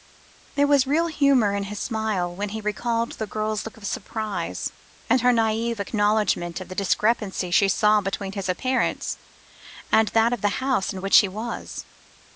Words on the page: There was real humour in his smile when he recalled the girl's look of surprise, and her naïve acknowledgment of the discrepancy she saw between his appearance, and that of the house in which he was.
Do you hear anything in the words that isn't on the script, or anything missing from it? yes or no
no